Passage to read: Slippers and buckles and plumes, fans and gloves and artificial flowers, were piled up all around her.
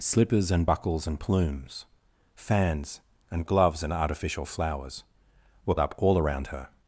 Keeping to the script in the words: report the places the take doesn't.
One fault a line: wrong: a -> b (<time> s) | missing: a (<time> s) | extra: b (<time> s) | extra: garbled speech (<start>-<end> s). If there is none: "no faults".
missing: piled (5.7 s)